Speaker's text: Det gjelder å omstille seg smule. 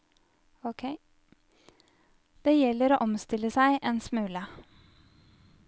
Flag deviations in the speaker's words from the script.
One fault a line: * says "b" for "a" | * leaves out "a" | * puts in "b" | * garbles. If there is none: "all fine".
* puts in "en"